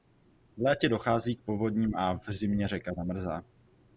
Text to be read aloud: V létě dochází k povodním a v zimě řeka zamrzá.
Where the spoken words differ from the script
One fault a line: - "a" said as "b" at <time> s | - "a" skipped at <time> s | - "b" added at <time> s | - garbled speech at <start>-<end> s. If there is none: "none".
none